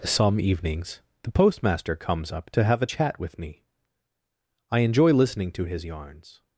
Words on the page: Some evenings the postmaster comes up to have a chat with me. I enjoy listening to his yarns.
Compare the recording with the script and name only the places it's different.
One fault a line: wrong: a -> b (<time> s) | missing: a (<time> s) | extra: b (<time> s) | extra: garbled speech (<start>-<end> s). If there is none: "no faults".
no faults